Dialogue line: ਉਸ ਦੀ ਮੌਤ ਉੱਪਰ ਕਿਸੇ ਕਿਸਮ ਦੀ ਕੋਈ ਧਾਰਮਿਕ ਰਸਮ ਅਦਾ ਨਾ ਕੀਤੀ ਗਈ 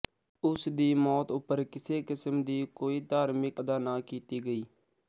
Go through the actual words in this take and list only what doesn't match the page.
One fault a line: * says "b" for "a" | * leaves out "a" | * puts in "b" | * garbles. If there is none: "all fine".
* leaves out "ਰਸਮ"